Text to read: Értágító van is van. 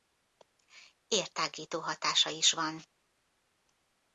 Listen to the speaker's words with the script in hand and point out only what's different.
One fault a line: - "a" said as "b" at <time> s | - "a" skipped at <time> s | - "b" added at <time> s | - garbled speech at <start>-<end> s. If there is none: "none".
- "van" said as "hatása" at 1.8 s